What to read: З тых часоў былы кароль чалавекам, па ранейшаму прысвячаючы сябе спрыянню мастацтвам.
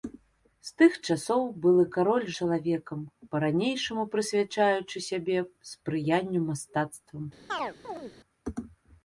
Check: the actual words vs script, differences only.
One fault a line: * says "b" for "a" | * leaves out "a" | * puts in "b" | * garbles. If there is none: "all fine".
all fine